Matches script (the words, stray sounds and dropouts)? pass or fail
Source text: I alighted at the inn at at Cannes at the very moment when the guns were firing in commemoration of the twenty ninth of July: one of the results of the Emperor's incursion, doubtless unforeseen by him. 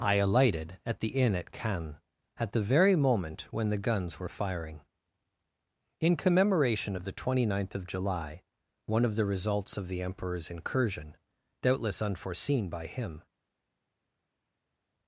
fail